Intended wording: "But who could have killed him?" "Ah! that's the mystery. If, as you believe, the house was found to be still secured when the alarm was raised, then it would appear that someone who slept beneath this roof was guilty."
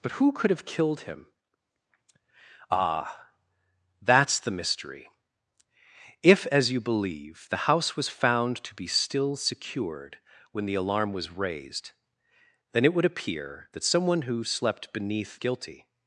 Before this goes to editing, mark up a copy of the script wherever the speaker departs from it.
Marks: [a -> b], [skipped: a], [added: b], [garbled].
"But who could have killed him?" "Ah! that's the mystery. If, as you believe, the house was found to be still secured when the alarm was raised, then it would appear that someone who slept beneath [skipped: this roof was] guilty."